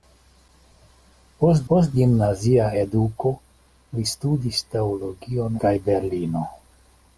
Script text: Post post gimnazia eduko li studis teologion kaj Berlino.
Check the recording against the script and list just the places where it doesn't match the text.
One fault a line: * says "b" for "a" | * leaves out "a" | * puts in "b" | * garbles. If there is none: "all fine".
all fine